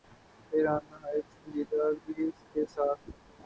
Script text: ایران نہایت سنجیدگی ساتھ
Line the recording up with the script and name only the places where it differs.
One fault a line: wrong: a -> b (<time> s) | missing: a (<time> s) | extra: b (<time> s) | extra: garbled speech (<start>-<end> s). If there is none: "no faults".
extra: کے (2.5 s)